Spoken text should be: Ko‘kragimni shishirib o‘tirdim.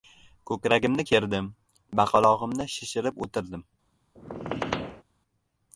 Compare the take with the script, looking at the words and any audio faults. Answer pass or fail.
fail